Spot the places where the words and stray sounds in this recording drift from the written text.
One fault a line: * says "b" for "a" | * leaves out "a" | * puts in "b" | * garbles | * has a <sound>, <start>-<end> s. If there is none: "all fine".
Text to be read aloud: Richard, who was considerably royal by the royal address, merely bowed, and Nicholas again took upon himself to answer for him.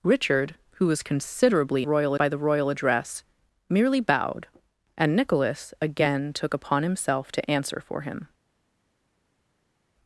all fine